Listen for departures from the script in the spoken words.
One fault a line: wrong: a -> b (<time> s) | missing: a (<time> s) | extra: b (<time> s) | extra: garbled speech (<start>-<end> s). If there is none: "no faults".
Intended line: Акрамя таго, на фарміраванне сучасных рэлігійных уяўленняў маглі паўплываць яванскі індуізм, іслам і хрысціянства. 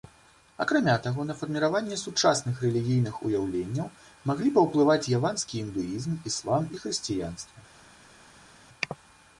no faults